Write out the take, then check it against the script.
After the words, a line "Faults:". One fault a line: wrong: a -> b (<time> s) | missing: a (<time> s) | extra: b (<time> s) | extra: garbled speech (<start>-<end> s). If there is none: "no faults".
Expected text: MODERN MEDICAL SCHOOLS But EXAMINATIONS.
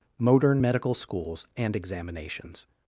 MODERN MEDICAL SCHOOLS AND EXAMINATIONS.
Faults:
wrong: But -> AND (1.6 s)